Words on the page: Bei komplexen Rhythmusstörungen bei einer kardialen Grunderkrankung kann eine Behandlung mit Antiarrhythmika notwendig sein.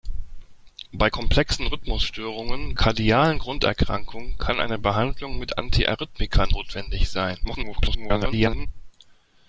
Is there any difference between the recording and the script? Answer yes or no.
yes